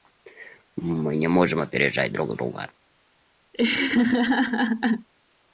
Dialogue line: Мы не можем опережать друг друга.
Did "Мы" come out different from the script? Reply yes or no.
no